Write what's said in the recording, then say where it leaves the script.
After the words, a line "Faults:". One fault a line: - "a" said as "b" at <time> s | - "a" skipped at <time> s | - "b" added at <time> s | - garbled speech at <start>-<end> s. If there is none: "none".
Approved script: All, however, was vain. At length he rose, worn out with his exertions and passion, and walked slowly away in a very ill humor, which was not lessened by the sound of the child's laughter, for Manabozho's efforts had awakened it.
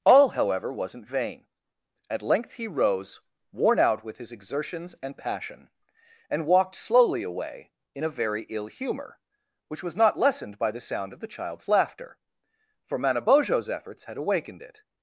All, however, wasn't vain. At length he rose, worn out with his exertions and passion, and walked slowly away in a very ill humor, which was not lessened by the sound of the child's laughter, for Manabozho's efforts had awakened it.
Faults:
- "was" said as "wasn't" at 0.7 s